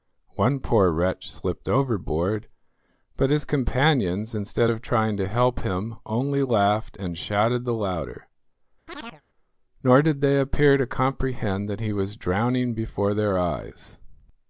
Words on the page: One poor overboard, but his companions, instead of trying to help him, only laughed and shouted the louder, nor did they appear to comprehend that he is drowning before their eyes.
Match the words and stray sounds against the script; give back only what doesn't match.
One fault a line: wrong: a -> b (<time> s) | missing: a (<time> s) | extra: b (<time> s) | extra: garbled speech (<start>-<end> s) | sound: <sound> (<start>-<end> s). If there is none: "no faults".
extra: wretch slipped (0.9 s)
sound: chirp (8.9-9.2 s)
wrong: is -> was (11.9 s)